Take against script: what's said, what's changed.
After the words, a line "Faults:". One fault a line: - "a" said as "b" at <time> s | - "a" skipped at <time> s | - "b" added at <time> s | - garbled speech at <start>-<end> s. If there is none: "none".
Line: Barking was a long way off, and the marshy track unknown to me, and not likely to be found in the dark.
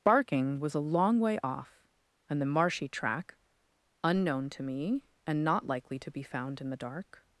Barking was a long way off, and the marshy track unknown to me, and not likely to be found in the dark.
Faults:
none